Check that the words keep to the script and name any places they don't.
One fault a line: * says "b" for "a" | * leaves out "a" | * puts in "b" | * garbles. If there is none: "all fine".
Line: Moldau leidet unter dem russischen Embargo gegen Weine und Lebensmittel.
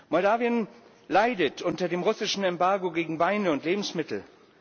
all fine